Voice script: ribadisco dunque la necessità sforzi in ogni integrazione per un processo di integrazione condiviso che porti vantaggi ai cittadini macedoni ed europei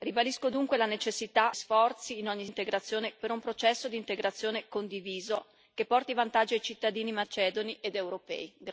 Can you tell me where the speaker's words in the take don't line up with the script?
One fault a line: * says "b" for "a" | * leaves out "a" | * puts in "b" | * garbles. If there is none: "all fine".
all fine